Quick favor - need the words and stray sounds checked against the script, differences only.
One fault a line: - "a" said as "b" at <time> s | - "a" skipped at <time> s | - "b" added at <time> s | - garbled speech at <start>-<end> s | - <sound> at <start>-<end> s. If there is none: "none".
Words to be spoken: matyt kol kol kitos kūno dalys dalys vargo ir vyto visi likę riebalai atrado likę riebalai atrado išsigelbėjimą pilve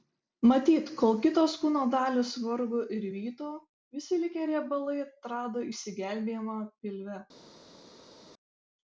- "kol" skipped at 1.2 s
- "dalys" skipped at 2.3 s
- "likę riebalai atrado" skipped at 5.7 s